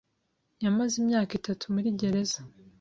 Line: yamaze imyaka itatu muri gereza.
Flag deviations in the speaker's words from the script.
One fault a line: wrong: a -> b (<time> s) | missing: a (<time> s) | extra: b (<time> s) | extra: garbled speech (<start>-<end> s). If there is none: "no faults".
no faults